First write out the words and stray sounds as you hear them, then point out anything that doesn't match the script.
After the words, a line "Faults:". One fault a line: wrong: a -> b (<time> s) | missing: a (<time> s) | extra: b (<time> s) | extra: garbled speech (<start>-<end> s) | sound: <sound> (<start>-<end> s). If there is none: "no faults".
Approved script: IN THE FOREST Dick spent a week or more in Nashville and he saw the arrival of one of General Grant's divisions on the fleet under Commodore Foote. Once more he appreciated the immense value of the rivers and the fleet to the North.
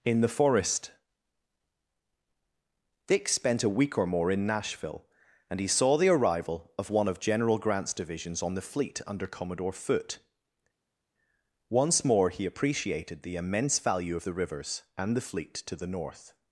IN THE FOREST Dick spent a week or more in Nashville and he saw the arrival of one of General Grant's divisions on the fleet under Commodore Foote. Once more he appreciated the immense value of the rivers and the fleet to the North.
Faults:
no faults